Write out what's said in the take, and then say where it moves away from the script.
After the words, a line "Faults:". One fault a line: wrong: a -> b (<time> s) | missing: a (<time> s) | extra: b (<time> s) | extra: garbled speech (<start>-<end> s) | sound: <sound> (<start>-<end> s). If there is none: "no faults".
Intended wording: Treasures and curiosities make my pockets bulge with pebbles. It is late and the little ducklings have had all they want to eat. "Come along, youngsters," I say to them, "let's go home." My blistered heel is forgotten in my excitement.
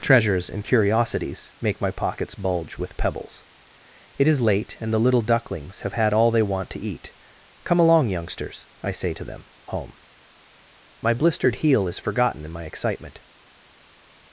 Treasures and curiosities make my pockets bulge with pebbles. It is late and the little ducklings have had all they want to eat. "Come along, youngsters," I say to them, "home." My blistered heel is forgotten in my excitement.
Faults:
missing: let's go (9.5 s)